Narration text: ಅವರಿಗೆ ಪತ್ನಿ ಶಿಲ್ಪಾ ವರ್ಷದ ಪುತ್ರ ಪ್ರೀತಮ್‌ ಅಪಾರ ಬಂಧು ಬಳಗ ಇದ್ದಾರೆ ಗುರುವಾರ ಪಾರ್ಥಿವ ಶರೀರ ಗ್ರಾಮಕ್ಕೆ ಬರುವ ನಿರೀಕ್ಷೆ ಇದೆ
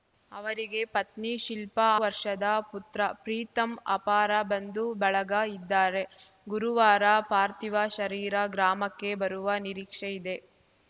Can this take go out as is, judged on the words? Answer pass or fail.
pass